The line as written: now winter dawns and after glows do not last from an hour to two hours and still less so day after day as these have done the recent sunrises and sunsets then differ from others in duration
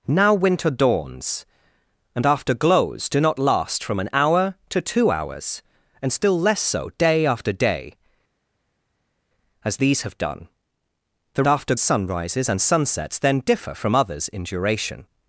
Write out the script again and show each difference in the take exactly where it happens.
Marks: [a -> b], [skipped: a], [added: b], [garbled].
now winter dawns and after glows do not last from an hour to two hours and still less so day after day as these have done the [recent -> after] sunrises and sunsets then differ from others in duration